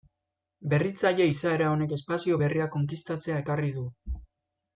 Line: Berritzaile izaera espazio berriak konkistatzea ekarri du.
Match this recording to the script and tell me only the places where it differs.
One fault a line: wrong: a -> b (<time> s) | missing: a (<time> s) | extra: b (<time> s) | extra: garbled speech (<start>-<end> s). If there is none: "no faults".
extra: honek (1.7 s)